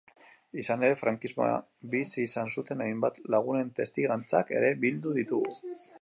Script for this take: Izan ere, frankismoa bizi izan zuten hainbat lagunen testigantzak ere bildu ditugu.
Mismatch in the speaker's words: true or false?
false